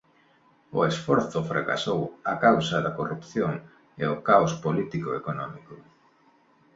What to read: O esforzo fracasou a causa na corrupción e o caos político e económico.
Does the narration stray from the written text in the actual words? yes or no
yes